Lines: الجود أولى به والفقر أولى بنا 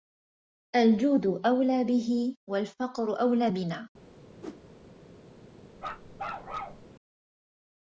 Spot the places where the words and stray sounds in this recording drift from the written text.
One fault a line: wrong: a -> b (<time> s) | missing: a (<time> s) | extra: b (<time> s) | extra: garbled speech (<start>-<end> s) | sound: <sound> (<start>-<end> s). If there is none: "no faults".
sound: whoosh (4.4-4.6 s)
sound: bark (5.8-6.9 s)